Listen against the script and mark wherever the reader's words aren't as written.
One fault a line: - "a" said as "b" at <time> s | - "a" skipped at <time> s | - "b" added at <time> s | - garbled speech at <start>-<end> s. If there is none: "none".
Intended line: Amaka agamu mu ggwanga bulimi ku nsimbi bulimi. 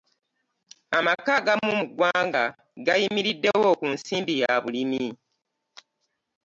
- "bulimi" said as "gayimiriddewo" at 2.9 s
- "ya" added at 4.4 s